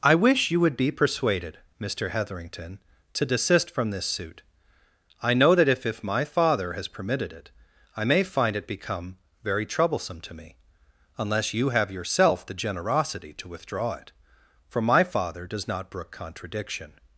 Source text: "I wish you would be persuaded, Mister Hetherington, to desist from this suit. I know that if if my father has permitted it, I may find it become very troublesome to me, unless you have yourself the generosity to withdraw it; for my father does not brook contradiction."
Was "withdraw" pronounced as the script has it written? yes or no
yes